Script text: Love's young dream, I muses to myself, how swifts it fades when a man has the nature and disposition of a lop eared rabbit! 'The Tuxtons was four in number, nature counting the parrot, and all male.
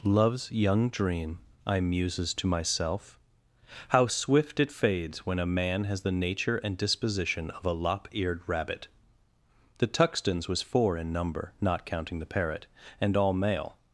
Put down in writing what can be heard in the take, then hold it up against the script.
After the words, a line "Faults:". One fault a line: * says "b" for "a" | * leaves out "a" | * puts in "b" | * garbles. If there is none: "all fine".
Love's young dream, I muses to myself, how swift it fades when a man has the nature and disposition of a lop eared rabbit! 'The Tuxtons was four in number, not counting the parrot, and all male.
Faults:
* says "swift" for "swifts"
* says "not" for "nature"